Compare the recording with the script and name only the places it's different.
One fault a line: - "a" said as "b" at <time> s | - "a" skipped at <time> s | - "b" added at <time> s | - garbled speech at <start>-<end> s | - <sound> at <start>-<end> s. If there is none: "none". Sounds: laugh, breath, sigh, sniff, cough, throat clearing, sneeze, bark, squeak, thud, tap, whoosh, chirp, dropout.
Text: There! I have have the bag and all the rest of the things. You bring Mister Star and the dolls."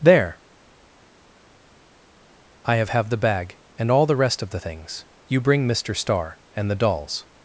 none